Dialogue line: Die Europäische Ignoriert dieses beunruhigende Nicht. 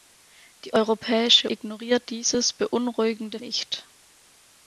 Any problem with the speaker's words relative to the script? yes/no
no